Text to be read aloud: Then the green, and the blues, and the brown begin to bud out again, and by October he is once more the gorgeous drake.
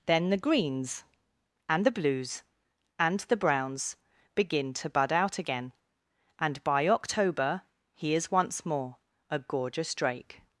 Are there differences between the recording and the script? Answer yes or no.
yes